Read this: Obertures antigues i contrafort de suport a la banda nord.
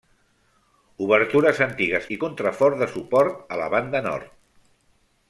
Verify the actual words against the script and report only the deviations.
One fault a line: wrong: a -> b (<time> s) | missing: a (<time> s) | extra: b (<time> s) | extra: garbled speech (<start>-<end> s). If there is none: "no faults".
no faults